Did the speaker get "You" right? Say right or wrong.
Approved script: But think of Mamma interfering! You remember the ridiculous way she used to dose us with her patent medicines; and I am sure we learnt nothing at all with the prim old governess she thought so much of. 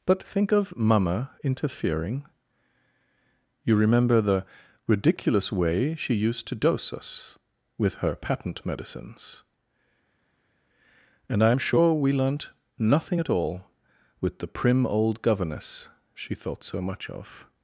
right